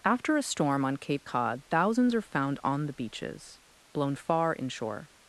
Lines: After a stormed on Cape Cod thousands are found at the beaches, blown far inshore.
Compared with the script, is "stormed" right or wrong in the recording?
wrong